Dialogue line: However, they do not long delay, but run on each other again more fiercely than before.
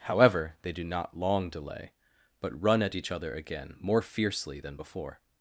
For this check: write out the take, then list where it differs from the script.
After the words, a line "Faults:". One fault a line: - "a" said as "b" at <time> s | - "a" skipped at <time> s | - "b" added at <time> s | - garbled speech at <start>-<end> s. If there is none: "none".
However, they do not long delay, but run at each other again more fiercely than before.
Faults:
- "on" said as "at" at 2.8 s